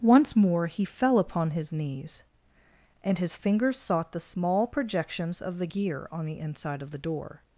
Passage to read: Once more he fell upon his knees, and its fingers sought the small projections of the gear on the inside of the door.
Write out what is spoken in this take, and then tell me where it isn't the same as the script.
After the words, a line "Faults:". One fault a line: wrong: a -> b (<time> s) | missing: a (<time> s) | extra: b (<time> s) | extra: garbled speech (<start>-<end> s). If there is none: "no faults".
Once more he fell upon his knees, and his fingers sought the small projections of the gear on the inside of the door.
Faults:
wrong: its -> his (3.2 s)